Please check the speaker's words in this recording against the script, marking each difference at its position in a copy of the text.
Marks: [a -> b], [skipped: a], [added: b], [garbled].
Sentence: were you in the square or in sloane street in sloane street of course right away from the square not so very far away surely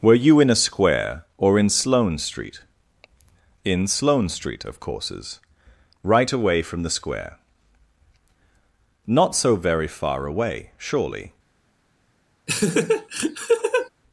were you in [the -> a] square or in sloane street in sloane street of [course -> courses] right away from the square not so very far away surely